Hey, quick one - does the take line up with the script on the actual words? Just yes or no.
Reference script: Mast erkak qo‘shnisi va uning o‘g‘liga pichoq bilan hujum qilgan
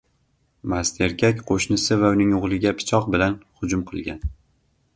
yes